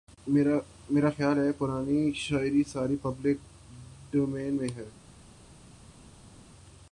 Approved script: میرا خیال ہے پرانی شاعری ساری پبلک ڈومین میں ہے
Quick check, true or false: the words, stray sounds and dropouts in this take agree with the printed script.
true